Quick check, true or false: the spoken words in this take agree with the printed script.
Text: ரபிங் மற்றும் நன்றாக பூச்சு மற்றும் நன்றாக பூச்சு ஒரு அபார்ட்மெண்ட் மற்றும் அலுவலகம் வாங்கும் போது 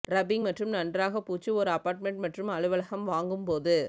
false